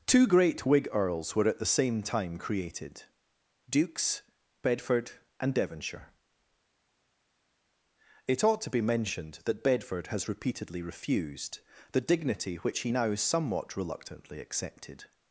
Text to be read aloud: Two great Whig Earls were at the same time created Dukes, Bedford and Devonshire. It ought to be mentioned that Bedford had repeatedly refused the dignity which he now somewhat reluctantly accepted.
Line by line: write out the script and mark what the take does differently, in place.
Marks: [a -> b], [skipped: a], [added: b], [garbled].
Two great Whig Earls were at the same time created Dukes, Bedford and Devonshire. It ought to be mentioned that Bedford [had -> has] repeatedly refused the dignity which he now somewhat reluctantly accepted.